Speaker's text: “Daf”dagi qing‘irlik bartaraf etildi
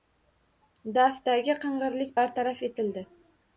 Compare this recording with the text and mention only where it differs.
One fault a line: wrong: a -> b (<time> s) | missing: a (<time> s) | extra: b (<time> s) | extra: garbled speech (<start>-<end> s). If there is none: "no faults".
no faults